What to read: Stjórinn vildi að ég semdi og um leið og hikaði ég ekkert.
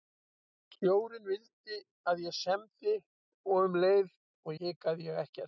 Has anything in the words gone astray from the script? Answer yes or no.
no